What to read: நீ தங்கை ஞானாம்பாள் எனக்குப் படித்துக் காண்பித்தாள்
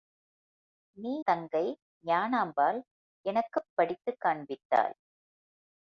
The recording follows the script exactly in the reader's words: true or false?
true